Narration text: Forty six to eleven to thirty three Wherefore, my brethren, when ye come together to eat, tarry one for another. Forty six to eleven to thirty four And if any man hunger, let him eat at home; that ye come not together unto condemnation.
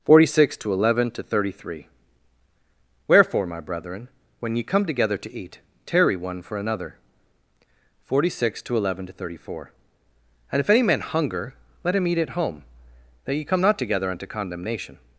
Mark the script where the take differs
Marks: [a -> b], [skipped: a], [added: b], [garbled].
Forty six to eleven to thirty three Wherefore, my brethren, when ye come together to eat, tarry one for another. Forty six to eleven to thirty four And if any man hunger, let him eat at home; that ye come not together unto condemnation.